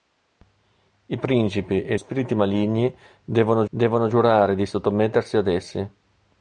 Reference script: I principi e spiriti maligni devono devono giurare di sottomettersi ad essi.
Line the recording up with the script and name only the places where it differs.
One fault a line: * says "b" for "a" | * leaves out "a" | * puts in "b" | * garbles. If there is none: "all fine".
all fine